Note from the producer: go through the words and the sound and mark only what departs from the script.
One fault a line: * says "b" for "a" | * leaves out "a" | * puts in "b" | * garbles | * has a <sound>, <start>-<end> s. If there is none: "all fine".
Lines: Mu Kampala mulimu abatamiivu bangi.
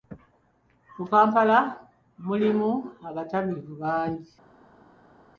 all fine